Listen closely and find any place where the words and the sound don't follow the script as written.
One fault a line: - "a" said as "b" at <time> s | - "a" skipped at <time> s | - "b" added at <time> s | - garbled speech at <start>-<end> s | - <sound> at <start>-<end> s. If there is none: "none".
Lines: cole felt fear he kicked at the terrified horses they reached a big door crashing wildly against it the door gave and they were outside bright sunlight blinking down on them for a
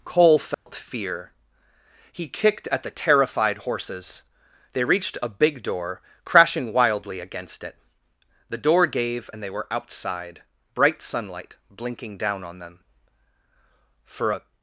- dropout at 0.5-0.7 s